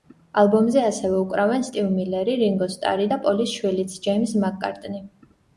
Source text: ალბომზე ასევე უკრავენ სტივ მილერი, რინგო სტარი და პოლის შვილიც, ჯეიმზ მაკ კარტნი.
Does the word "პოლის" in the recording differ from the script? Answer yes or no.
no